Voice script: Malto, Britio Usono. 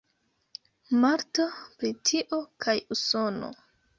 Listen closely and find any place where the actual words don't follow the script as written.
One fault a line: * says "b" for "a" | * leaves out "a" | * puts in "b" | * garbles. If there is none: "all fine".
* puts in "kaj"